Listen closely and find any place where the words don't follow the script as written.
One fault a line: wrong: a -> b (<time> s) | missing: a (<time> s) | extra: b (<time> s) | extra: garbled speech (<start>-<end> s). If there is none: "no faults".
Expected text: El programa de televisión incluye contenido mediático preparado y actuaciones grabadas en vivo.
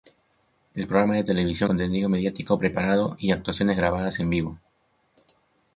missing: incluye (1.7 s)